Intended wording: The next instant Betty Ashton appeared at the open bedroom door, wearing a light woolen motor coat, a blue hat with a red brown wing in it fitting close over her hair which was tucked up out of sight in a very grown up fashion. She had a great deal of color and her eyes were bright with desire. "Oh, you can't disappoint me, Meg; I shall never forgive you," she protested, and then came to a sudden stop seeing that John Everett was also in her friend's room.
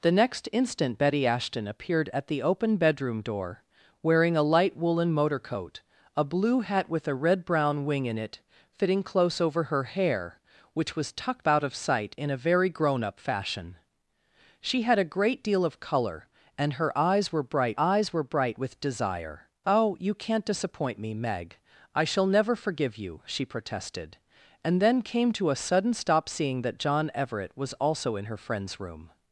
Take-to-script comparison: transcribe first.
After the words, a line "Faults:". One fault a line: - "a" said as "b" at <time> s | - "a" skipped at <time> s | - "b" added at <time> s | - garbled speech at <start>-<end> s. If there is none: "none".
The next instant Betty Ashton appeared at the open bedroom door, wearing a light woolen motor coat, a blue hat with a red brown wing in it fitting close over her hair which was tucked out of sight in a very grown up fashion. She had a great deal of color and her eyes were bright eyes were bright with desire. "Oh, you can't disappoint me, Meg; I shall never forgive you," she protested, and then came to a sudden stop seeing that John Everett was also in her friend's room.
Faults:
- "up" skipped at 11.5 s
- "eyes were bright" added at 17.8 s